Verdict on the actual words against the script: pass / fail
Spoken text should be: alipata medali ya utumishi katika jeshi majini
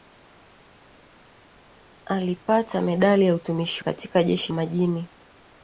pass